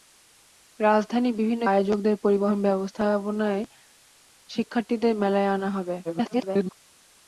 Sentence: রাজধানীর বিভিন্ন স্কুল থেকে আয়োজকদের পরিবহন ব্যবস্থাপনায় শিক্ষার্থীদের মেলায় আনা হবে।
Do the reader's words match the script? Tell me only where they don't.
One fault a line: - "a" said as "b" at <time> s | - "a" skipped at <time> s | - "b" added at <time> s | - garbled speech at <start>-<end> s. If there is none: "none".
- "স্কুল থেকে" skipped at 1.6 s
- garbled speech at 6.0-6.8 s